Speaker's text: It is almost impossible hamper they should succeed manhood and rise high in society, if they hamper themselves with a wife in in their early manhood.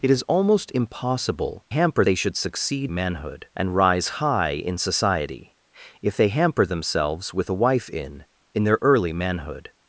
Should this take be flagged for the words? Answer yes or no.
no